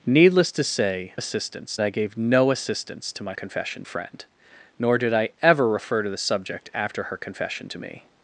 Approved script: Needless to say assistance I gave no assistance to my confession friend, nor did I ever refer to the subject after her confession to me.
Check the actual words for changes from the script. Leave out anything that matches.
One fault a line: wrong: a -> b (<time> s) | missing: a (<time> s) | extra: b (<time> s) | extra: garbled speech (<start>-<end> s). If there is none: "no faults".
no faults